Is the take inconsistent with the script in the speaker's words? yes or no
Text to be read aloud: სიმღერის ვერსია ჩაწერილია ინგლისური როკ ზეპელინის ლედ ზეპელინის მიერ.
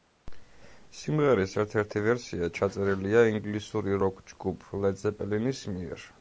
yes